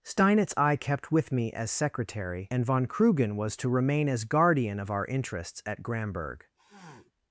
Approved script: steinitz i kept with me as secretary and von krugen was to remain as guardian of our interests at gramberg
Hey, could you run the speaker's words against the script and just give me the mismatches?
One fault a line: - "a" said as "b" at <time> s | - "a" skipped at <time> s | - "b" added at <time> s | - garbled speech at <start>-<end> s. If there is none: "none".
none